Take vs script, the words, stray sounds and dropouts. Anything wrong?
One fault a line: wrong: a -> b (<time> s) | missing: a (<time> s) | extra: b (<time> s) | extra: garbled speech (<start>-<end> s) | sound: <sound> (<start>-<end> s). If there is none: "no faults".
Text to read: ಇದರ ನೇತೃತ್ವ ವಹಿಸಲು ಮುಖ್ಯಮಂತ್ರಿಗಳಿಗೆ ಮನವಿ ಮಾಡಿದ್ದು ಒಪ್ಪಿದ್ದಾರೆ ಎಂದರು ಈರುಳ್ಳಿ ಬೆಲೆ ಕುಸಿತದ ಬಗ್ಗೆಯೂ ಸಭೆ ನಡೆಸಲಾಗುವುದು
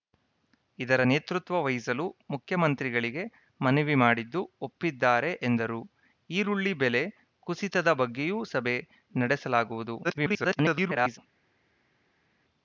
extra: garbled speech (10.0-11.2 s)